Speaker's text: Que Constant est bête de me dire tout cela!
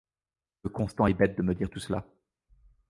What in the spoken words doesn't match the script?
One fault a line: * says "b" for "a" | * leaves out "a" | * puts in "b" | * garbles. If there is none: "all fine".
all fine